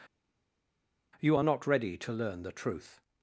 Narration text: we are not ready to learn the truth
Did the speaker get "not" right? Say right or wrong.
right